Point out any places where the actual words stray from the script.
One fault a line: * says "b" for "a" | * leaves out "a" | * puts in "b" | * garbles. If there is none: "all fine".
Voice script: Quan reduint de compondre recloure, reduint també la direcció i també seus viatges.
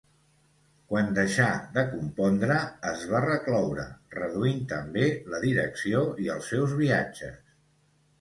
* says "deixà" for "reduint"
* puts in "es va"
* says "els" for "també"